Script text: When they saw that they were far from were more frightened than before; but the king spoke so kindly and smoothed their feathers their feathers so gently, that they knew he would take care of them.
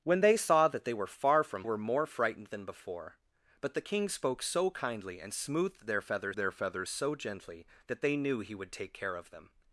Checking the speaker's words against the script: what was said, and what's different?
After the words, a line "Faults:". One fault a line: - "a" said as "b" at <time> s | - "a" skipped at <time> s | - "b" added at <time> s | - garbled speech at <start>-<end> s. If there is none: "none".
When they saw that they were far from were more frightened than before; but the king spoke so kindly and smoothed their feathers their feathers so gently, that they knew he would take care of them.
Faults:
none